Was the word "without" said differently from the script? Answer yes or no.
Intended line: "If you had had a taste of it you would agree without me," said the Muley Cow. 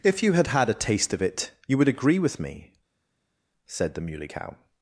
yes